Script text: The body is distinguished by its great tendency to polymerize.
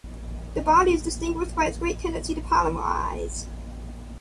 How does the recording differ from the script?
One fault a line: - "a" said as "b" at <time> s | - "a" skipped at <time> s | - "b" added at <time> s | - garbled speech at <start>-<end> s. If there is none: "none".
none